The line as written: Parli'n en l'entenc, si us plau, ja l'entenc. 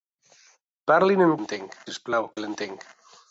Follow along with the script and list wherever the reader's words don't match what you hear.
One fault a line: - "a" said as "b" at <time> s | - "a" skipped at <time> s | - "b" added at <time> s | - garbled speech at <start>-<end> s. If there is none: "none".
none